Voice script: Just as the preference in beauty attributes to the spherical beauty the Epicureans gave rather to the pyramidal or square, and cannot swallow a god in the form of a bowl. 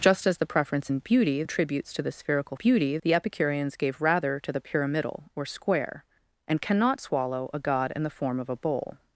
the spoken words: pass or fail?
pass